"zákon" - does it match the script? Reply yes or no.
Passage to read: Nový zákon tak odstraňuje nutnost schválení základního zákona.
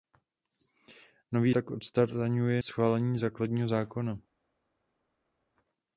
no